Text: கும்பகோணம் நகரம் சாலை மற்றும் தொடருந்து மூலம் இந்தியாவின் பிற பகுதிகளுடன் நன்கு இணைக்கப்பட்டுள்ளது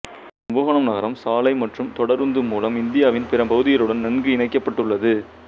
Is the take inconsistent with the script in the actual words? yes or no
no